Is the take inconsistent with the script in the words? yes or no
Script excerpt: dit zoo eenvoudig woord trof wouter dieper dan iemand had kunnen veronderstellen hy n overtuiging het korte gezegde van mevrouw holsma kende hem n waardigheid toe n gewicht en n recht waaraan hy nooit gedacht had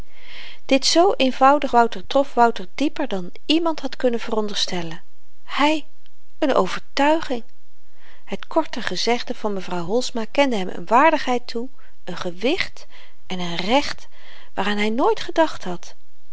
yes